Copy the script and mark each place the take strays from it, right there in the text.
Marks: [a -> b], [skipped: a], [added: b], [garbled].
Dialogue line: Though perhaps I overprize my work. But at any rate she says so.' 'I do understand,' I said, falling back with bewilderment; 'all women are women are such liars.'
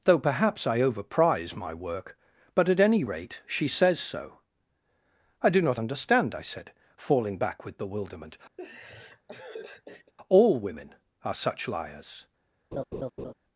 Though perhaps I overprize my work. But at any rate she says so.' 'I do [added: not] understand,' I said, falling back with bewilderment; 'all women are [skipped: women are] such liars.'